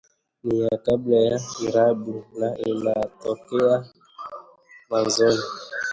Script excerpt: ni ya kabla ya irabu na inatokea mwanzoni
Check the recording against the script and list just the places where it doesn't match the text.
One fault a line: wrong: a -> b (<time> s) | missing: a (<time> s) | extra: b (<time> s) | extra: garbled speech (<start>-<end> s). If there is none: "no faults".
no faults